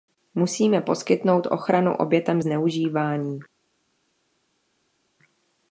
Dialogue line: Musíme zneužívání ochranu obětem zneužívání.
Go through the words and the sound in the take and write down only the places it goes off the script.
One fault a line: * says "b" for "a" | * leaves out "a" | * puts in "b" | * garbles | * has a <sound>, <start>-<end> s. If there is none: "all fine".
* says "poskytnout" for "zneužívání"